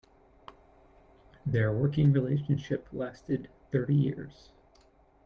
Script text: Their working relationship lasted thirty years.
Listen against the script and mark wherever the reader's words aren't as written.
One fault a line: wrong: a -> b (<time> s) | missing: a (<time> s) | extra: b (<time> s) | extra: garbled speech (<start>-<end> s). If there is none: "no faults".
no faults